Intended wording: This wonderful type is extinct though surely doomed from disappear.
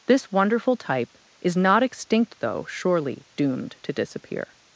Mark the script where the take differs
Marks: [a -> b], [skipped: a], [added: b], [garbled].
This wonderful type is [added: not] extinct though surely doomed [from -> to] disappear.